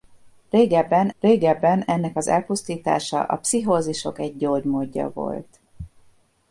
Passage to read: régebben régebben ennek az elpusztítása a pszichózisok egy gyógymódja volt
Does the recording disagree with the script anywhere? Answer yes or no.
no